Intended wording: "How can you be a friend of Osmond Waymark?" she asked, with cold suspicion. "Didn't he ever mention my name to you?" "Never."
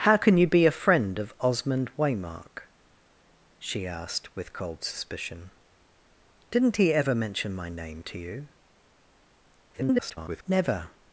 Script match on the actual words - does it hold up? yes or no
no